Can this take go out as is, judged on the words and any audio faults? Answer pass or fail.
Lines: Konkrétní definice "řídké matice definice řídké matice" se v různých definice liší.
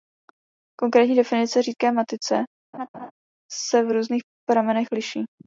fail